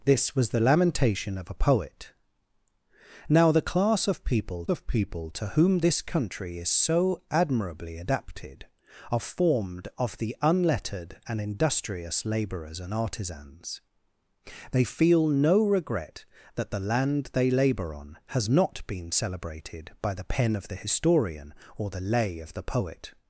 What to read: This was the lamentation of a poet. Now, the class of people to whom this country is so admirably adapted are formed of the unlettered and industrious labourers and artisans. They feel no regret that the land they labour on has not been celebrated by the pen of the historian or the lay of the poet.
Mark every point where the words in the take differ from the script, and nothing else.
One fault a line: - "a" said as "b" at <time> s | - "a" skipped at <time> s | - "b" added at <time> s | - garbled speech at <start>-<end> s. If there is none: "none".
- "of people" added at 4.7 s